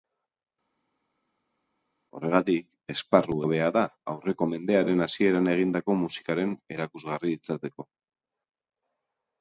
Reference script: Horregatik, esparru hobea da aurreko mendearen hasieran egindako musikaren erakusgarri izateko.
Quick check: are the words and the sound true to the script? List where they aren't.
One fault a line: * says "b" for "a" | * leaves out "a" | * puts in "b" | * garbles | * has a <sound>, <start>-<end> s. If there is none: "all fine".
all fine